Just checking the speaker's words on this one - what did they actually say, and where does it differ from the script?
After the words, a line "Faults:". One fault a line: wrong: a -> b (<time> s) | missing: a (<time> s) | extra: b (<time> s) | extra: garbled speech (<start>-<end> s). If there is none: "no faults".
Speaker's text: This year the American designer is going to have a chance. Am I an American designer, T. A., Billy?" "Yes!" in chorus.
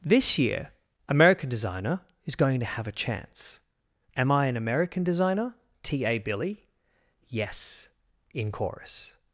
This year American designer is going to have a chance. Am I an American designer, T. A., Billy?" "Yes!" in chorus.
Faults:
missing: the (0.7 s)